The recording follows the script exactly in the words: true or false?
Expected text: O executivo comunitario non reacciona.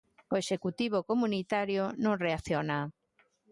true